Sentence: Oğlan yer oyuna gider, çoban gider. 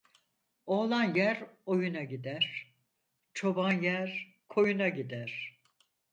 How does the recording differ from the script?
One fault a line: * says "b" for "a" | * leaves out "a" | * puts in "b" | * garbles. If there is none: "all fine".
* puts in "yer koyuna"